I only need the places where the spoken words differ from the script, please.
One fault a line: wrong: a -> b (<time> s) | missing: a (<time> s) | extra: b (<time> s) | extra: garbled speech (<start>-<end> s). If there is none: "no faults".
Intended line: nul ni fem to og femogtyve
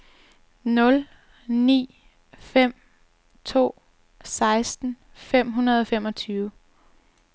extra: seksten fem hundrede (4.2 s)